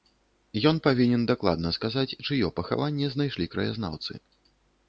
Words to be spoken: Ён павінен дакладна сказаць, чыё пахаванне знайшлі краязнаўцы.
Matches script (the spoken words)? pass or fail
pass